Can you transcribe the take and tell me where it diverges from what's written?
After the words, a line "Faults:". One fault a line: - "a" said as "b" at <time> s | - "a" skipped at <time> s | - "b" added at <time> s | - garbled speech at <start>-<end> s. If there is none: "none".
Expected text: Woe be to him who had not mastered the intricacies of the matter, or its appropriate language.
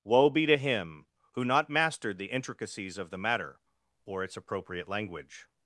Woe be to him who not mastered the intricacies of the matter, or its appropriate language.
Faults:
- "had" skipped at 1.4 s